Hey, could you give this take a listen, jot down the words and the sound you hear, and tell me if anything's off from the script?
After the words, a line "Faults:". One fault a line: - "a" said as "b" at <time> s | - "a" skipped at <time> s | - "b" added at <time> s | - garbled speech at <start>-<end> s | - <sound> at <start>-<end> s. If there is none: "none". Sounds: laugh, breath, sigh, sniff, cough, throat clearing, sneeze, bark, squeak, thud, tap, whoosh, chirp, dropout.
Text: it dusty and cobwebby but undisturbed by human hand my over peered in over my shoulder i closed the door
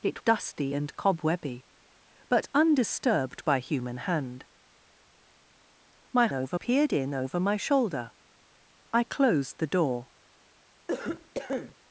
it dusty and cobwebby but undisturbed by human hand my over peered in over my shoulder i closed the door
Faults:
- cough at 10.9-11.8 s